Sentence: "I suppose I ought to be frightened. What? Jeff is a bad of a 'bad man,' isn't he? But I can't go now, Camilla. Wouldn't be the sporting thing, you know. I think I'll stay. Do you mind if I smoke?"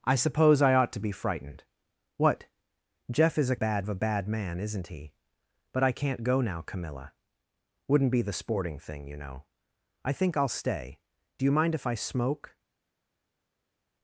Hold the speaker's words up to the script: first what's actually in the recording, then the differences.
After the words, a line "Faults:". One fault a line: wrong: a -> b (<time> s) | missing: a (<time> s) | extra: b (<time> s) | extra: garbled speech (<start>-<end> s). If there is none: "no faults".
"I suppose I ought to be frightened. What? Jeff is a bad of a 'bad man,' isn't he? But I can't go now, Camilla. Wouldn't be the sporting thing, you know. I think I'll stay. Do you mind if I smoke?"
Faults:
no faults